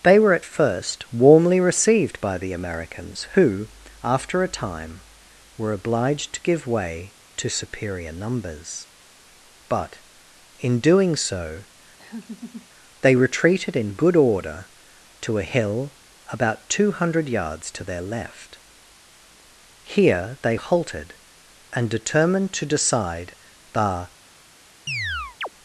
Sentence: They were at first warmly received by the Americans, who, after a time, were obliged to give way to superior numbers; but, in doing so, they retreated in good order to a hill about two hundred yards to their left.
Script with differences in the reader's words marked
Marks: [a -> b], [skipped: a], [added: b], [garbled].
They were at first warmly received by the Americans, who, after a time, were obliged to give way to superior numbers; but, in doing so, they retreated in good order to a hill about two hundred yards to their left. [added: Here they halted and determined to decide the]